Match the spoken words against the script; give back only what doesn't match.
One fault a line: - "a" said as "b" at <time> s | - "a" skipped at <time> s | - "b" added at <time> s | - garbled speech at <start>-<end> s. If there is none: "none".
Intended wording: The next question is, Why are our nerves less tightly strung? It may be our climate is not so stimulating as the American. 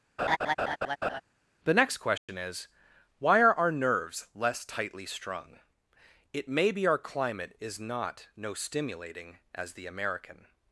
- "so" said as "no" at 8.3 s